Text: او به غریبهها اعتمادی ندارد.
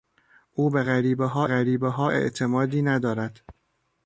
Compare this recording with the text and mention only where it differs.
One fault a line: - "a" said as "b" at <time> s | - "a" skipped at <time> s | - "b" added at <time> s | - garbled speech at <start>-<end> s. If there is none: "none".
- "غریبهها" added at 1.4 s